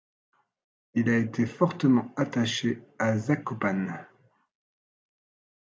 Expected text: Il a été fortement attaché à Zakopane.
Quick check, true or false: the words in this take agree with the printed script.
true